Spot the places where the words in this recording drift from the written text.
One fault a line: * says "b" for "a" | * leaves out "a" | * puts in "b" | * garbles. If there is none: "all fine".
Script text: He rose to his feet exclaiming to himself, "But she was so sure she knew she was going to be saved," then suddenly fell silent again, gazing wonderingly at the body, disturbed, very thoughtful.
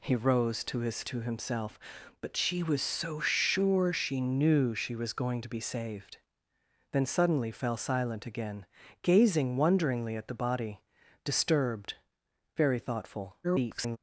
* leaves out "feet exclaiming"
* garbles